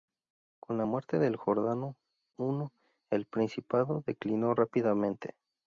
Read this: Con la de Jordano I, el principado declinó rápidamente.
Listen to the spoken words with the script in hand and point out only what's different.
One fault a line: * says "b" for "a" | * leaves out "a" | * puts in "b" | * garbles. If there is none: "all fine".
* puts in "muerte"